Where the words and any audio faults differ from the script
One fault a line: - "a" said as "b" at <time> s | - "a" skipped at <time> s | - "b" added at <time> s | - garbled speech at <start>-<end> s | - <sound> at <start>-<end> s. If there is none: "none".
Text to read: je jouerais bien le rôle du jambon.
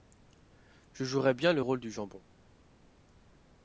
none